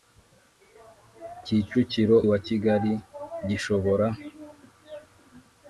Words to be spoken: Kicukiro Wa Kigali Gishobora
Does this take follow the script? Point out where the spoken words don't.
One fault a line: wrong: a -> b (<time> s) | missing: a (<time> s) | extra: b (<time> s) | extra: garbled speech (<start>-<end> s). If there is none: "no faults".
no faults